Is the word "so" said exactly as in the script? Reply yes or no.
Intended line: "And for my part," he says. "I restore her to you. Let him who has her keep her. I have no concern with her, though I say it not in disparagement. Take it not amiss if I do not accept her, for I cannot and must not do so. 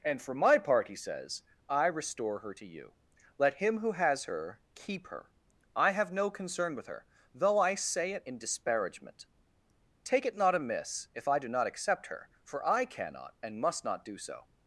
yes